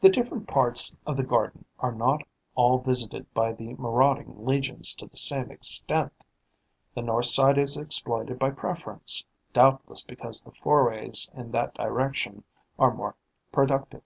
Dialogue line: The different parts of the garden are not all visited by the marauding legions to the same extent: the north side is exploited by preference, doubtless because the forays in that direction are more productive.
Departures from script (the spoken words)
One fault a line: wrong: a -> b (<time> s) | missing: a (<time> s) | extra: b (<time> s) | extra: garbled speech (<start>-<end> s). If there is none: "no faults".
no faults